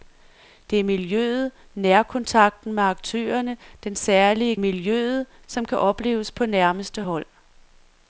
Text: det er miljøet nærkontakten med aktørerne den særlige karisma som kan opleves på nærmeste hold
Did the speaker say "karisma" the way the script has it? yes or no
no